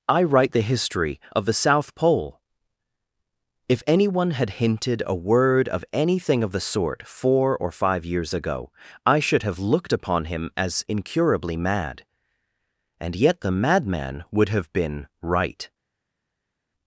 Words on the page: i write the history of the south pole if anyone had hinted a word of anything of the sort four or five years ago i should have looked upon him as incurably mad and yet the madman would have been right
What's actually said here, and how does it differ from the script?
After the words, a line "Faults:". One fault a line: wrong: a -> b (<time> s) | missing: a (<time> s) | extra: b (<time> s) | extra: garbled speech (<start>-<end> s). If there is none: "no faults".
i write the history of the south pole if anyone had hinted a word of anything of the sort four or five years ago i should have looked upon him as incurably mad and yet the madman would have been right
Faults:
no faults